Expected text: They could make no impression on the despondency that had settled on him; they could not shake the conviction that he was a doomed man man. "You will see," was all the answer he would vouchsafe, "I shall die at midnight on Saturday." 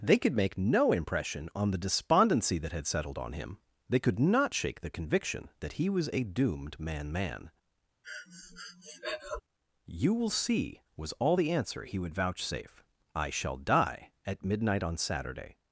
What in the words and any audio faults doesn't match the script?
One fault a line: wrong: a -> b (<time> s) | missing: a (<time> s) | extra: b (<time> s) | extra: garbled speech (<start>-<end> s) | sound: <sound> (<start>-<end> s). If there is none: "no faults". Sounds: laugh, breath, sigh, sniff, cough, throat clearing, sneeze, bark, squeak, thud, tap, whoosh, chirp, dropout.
sound: breath (8.0-9.4 s)